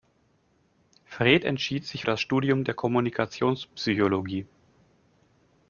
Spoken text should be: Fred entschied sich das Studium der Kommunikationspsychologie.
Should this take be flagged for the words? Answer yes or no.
no